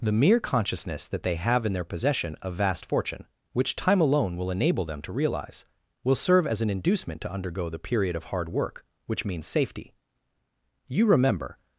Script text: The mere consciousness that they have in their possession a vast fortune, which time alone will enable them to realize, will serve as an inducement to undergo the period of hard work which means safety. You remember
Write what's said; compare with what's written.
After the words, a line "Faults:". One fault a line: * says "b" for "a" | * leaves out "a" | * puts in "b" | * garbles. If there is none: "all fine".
The mere consciousness that they have in their possession a vast fortune, which time alone will enable them to realize, will serve as an inducement to undergo the period of hard work which means safety. You remember
Faults:
all fine